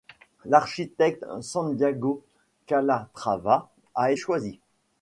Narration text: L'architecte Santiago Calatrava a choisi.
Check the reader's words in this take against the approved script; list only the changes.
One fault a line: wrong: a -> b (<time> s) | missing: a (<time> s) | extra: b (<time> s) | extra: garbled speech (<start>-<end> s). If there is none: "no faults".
no faults